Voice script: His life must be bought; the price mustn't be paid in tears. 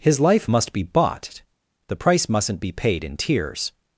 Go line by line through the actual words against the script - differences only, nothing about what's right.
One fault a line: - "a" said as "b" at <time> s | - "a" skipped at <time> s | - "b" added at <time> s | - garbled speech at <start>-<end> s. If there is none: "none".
none